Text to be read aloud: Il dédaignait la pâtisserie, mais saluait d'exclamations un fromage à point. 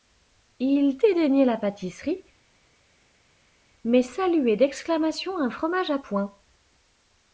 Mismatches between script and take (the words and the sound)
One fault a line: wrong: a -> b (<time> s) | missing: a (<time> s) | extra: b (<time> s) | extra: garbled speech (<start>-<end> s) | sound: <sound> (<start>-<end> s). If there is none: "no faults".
no faults